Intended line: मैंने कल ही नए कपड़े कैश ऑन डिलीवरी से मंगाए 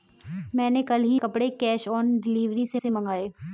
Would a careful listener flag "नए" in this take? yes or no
yes